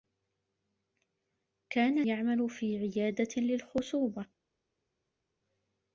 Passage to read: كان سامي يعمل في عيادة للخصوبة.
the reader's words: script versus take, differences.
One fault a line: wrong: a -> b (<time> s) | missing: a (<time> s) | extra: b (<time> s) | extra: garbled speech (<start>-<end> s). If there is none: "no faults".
missing: سامي (2.0 s)